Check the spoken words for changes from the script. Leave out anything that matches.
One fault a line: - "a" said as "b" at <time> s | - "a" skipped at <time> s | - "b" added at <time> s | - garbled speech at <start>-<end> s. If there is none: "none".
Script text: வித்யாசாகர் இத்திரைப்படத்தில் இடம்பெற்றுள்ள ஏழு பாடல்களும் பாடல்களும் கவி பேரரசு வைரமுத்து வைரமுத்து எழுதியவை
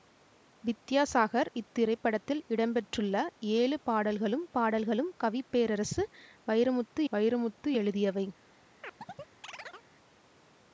none